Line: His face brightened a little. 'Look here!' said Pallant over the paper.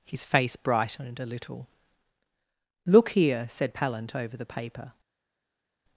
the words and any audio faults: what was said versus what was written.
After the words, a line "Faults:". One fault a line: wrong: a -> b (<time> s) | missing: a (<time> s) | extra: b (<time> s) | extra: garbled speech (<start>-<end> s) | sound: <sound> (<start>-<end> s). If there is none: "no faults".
His face brightened a little. 'Look here!' said Pallant over the paper.
Faults:
no faults